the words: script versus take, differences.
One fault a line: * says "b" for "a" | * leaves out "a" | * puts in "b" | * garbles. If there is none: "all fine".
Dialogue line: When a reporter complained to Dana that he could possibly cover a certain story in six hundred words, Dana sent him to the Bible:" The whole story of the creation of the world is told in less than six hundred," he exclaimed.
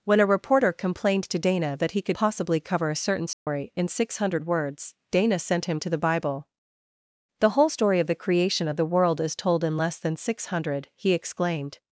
all fine